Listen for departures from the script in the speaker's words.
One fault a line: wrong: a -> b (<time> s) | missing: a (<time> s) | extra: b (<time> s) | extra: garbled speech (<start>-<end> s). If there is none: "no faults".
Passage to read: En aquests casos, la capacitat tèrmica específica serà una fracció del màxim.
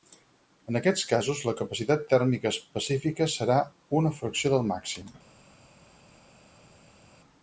no faults